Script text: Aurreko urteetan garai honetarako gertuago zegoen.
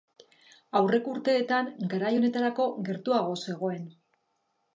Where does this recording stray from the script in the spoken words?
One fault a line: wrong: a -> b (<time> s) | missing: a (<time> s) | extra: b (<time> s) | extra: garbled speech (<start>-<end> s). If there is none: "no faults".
no faults